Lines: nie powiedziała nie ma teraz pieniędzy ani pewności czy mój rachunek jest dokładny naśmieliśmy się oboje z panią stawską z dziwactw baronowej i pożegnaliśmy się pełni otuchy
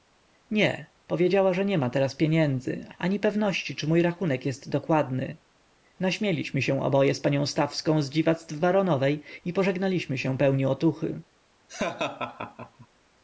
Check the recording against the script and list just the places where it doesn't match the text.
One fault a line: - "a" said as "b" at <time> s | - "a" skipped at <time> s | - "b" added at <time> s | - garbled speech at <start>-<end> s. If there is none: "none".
- "że" added at 1.5 s